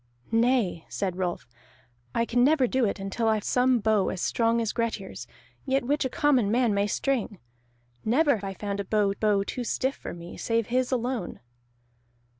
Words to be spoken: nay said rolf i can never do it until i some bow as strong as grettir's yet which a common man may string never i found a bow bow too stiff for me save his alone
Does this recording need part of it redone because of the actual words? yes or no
no